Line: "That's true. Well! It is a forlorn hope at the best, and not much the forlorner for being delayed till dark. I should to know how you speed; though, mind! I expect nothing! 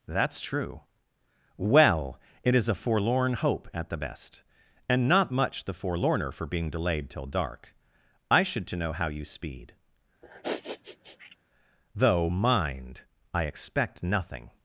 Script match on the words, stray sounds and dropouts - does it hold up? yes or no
no